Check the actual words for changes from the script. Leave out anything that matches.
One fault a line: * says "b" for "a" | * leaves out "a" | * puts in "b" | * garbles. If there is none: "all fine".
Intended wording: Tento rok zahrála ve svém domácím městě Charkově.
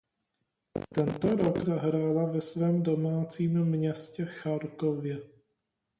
all fine